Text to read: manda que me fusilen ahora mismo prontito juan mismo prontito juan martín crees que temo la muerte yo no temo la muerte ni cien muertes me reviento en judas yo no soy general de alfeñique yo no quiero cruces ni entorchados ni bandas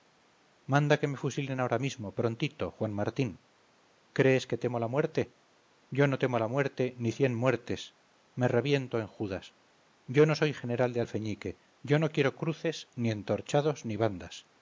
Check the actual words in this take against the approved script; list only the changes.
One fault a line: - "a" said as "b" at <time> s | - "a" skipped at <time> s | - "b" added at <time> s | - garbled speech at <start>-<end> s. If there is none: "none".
- "mismo prontito juan" skipped at 2.9 s